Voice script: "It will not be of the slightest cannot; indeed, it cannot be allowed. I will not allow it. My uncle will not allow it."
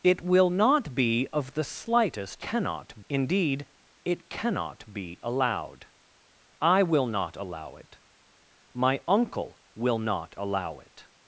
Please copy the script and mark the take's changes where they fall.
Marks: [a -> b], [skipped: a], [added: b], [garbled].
"It will not be of the slightest cannot; indeed, it cannot be allowed. I will not allow it. My uncle will not allow it."